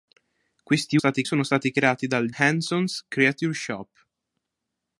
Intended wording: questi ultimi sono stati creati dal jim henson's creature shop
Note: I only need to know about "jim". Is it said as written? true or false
false